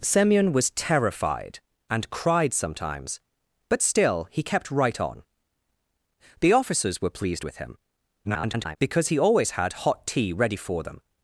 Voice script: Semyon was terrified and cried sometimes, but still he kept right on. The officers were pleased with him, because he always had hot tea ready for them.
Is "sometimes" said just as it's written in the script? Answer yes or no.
yes